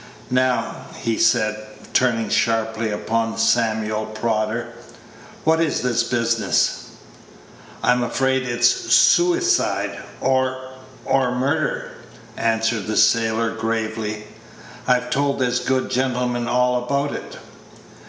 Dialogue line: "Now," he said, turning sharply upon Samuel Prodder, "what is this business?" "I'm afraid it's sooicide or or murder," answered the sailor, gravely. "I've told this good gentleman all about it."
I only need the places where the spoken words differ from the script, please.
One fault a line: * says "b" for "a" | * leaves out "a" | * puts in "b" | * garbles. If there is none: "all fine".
all fine